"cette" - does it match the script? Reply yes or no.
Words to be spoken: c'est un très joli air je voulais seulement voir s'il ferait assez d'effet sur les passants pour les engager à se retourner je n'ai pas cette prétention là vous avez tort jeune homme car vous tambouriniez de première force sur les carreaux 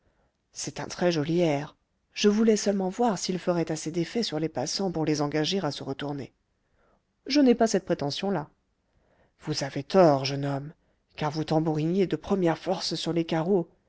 yes